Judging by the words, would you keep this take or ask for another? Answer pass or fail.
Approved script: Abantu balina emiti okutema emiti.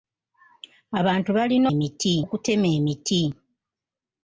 pass